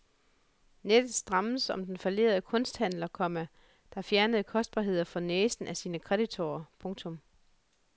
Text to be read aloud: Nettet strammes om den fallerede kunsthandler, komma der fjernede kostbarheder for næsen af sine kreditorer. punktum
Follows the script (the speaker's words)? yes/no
yes